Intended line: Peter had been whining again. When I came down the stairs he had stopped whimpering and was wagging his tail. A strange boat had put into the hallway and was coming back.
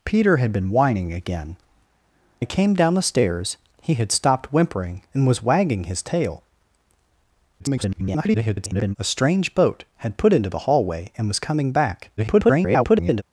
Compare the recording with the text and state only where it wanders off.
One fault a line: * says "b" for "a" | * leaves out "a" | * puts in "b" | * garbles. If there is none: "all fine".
* leaves out "When"
* garbles
* garbles